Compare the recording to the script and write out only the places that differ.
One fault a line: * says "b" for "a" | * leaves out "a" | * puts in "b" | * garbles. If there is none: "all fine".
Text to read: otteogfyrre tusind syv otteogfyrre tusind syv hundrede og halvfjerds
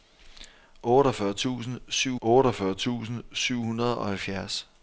all fine